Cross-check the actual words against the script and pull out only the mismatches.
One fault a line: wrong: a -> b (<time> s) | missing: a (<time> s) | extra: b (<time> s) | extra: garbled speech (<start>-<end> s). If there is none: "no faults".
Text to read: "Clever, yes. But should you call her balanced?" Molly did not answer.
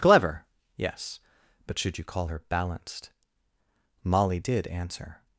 missing: not (4.7 s)